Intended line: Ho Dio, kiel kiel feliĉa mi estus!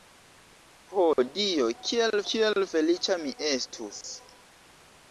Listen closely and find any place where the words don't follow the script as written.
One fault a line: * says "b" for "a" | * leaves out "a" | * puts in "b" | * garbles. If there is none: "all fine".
all fine